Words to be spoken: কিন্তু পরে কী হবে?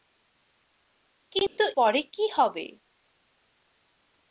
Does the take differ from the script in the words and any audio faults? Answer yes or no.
yes